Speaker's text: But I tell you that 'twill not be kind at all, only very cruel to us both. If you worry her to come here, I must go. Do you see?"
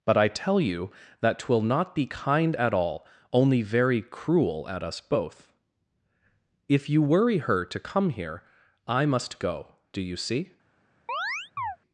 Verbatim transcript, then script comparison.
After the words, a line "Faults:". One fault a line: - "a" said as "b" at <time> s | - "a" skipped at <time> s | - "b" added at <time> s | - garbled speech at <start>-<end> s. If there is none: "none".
But I tell you that 'twill not be kind at all, only very cruel at us both. If you worry her to come here, I must go. Do you see?"
Faults:
- "to" said as "at" at 4.7 s